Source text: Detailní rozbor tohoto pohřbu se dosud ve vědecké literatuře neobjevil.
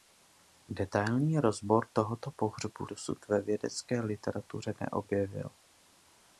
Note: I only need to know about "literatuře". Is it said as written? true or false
true